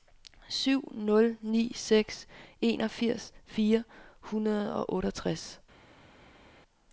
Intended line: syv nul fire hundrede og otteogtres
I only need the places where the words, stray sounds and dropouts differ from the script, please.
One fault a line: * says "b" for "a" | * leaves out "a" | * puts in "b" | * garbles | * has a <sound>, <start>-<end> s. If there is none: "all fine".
* puts in "ni seks enogfirs"